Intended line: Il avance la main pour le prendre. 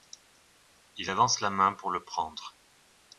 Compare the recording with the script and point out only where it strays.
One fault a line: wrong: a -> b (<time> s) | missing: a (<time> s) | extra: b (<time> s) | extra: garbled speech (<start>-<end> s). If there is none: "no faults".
no faults